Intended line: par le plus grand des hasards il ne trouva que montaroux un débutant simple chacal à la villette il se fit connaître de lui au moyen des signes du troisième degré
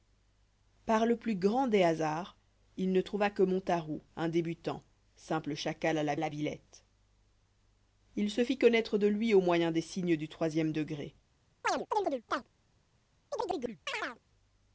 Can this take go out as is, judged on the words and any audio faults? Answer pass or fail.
fail